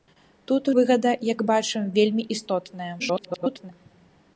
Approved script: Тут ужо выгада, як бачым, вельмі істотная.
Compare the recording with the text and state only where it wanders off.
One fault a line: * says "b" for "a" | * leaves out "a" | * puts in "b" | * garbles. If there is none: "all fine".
* leaves out "ужо"
* garbles